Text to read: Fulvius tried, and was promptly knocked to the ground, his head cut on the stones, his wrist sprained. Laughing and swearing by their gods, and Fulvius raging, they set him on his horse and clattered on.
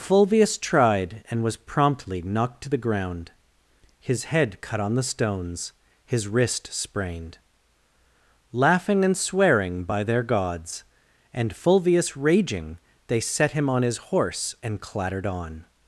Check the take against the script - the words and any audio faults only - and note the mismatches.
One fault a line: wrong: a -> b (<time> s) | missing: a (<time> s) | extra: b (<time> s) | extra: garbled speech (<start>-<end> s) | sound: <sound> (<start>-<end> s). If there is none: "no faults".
no faults